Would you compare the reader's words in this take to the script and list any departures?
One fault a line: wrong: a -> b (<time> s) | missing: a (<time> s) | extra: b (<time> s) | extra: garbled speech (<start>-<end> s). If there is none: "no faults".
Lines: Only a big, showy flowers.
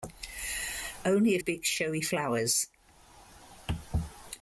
no faults